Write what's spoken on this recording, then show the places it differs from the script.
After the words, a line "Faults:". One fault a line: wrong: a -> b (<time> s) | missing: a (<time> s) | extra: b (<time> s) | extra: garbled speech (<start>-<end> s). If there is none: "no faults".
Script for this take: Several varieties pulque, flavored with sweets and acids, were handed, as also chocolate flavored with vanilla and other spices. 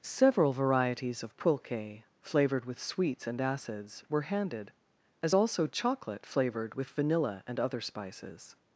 Several varieties of pulque, flavored with sweets and acids, were handed, as also chocolate flavored with vanilla and other spices.
Faults:
extra: of (1.2 s)